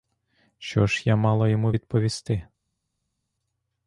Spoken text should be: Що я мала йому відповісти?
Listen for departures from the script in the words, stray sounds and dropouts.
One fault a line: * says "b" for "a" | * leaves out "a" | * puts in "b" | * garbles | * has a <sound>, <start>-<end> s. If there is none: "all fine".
* puts in "ж"